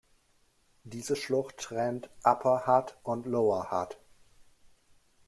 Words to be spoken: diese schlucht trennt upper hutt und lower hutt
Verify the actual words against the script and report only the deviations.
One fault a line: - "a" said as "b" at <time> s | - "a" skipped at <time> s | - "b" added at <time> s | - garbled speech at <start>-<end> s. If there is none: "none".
none